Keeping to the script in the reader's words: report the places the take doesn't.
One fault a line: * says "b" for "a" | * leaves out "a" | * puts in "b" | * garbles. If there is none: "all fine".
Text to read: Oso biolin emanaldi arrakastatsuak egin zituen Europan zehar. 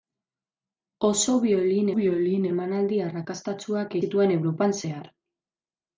* puts in "biolin"
* leaves out "egin"